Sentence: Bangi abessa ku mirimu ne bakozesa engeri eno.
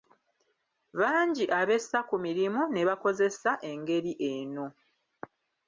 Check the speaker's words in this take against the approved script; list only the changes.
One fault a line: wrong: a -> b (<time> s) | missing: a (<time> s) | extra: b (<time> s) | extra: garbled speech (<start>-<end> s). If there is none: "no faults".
no faults